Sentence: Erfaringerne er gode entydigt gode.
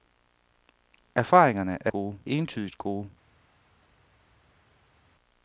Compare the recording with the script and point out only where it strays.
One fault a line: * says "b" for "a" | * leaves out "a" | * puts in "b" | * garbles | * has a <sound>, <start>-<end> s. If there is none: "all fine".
all fine